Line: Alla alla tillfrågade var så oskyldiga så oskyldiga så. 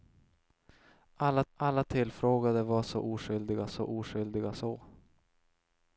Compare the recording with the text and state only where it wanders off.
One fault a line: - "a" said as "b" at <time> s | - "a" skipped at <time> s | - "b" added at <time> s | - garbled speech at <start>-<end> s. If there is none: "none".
none